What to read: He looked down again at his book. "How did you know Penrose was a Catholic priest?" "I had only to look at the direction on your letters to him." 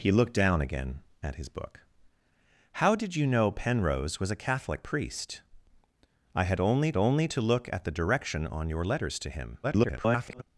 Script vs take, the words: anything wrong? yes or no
yes